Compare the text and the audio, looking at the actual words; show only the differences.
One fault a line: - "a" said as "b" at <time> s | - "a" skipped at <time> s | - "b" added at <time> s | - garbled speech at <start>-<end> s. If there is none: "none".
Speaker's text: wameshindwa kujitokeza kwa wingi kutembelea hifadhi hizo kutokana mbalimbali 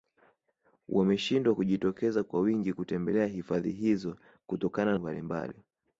none